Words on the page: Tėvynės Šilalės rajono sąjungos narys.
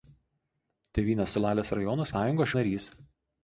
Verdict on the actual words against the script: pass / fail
pass